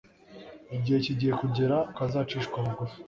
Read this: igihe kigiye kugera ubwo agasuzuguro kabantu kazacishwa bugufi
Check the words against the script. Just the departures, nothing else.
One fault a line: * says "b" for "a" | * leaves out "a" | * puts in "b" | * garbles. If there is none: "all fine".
* leaves out "ubwo agasuzuguro kabantu"